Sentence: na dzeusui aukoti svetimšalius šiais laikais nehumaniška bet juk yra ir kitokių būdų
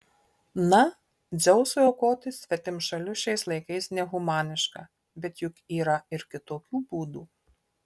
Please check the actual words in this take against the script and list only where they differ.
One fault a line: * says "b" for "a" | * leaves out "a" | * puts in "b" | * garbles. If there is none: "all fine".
all fine